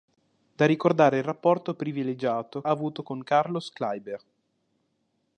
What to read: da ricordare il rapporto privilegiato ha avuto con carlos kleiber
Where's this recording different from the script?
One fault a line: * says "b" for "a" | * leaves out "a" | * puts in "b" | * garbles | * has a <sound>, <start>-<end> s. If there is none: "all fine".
all fine